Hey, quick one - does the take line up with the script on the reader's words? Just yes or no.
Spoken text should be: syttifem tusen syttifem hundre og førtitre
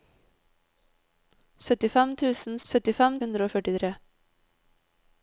yes